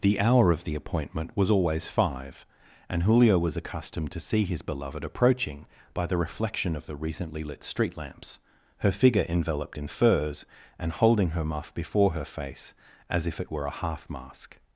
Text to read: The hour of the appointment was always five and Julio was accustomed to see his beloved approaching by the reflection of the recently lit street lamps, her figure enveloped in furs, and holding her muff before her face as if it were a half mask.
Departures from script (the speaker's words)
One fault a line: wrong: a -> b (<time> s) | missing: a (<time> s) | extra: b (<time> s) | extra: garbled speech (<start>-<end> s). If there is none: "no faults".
no faults